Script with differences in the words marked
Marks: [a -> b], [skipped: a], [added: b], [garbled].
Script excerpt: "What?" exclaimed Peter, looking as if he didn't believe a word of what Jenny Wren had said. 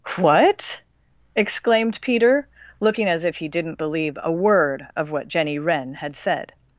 "What?" exclaimed Peter, looking as if he didn't believe a word of what Jenny Wren had said.